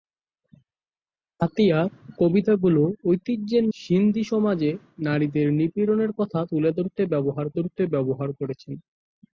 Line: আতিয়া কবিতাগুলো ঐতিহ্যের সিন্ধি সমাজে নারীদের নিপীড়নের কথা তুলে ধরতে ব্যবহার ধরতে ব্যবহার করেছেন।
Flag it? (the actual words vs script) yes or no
no